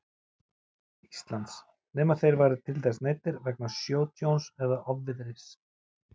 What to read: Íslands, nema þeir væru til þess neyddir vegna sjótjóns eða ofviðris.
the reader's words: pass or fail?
pass